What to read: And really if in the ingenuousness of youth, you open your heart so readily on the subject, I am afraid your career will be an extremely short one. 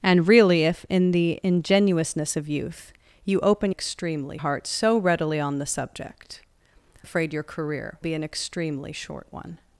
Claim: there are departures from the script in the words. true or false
true